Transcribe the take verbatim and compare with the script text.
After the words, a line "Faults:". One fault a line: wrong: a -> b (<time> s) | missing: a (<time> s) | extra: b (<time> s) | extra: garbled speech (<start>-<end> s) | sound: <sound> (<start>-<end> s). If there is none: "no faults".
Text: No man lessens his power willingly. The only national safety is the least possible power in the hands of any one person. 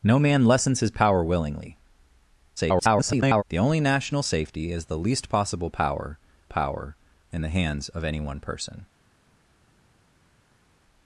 No man lessens his power willingly. [garbled] The only national safety is the least possible power power in the hands of any one person.
Faults:
extra: garbled speech (2.6-3.4 s)
extra: power (6.4 s)